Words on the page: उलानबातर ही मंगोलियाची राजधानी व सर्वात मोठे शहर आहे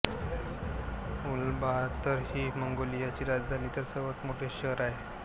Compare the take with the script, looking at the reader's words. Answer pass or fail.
pass